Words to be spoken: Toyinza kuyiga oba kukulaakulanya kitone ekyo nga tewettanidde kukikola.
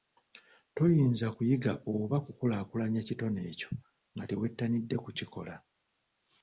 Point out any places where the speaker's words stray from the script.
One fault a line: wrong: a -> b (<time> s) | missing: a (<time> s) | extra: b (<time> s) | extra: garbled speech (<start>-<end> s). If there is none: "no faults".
no faults